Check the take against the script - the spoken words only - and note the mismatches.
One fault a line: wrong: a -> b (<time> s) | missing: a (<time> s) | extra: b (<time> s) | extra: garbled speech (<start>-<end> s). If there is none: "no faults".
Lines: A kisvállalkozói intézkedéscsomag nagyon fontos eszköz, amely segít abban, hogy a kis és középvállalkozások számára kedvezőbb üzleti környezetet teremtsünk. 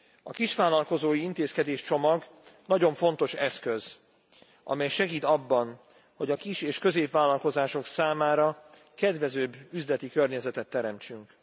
no faults